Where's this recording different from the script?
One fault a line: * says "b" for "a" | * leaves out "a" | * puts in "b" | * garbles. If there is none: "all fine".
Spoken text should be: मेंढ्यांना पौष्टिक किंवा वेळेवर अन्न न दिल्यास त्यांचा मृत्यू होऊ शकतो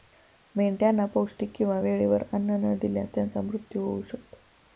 all fine